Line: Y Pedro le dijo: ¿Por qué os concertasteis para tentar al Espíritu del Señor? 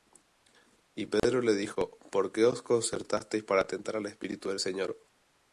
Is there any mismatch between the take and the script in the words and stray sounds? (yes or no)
yes